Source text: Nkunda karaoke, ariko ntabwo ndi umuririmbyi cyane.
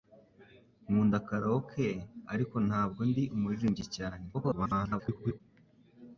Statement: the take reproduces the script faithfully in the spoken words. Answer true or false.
false